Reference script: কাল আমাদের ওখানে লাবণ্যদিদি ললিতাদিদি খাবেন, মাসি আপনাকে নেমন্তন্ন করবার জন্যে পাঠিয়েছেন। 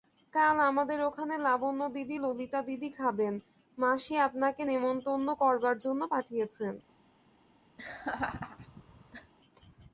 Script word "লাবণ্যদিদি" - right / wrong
right